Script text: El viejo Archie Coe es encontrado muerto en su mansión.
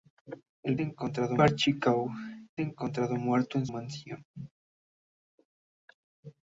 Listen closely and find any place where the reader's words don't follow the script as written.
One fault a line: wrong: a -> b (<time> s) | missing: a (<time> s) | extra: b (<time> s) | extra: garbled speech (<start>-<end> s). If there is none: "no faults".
wrong: viejo -> encontrado (0.8 s)
missing: es (2.1 s)
missing: su (3.7 s)